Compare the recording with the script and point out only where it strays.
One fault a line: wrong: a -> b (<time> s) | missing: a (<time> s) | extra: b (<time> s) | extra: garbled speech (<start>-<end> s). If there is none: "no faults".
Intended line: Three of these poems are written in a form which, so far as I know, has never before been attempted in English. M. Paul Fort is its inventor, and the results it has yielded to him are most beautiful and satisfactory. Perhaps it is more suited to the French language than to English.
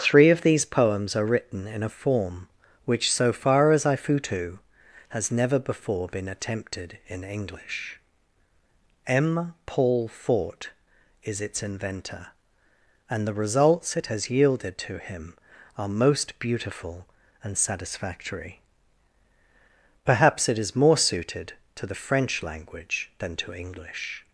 wrong: know -> futu (4.0 s)